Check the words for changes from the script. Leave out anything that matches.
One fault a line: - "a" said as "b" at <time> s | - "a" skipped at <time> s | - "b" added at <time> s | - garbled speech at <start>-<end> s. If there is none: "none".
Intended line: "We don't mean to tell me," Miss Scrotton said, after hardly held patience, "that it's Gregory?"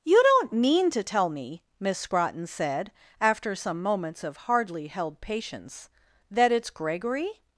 - "We" said as "You" at 0.0 s
- "some moments of" added at 3.5 s